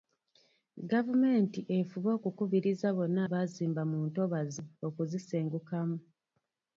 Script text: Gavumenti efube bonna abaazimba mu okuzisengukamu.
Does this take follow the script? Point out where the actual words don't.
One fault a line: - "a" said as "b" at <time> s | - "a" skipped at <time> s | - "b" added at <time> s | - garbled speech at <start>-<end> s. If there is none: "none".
- "okukubiriza" added at 2.2 s
- "ntobazi" added at 4.1 s